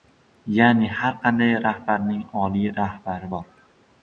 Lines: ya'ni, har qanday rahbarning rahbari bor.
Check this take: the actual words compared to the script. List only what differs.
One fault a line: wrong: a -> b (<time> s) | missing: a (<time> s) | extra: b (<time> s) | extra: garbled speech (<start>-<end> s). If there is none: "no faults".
extra: oliy (2.5 s)